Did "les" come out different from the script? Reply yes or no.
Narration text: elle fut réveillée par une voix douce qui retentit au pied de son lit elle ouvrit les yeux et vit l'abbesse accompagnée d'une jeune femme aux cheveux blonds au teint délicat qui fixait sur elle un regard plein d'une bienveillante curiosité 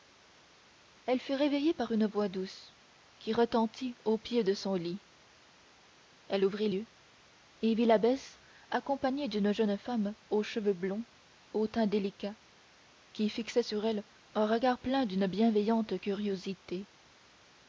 yes